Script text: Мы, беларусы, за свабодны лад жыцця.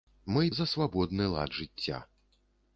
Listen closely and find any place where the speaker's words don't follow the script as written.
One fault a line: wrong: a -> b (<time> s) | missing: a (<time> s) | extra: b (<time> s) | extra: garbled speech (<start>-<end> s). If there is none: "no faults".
missing: беларусы (0.5 s)